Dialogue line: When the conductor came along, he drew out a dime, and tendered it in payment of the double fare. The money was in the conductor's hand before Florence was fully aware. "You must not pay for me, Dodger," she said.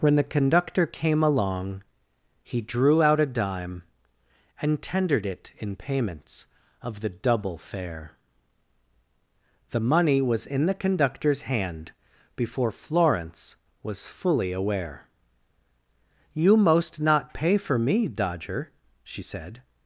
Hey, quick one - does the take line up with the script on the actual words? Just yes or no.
no